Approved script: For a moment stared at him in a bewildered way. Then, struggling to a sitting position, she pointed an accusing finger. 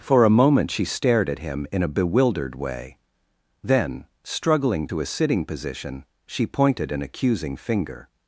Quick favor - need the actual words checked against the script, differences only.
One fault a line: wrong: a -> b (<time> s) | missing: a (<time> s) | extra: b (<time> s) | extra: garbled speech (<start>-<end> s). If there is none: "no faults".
extra: she (0.7 s)